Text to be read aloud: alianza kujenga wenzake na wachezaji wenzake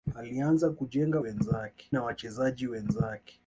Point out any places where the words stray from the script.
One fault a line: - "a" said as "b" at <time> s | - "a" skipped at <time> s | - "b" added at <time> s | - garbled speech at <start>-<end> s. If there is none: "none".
none